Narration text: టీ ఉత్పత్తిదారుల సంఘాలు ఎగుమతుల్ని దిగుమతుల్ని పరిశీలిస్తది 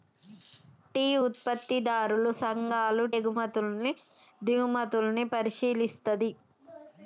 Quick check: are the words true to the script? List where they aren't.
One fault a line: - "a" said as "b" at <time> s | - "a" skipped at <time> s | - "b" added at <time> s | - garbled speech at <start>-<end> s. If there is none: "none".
none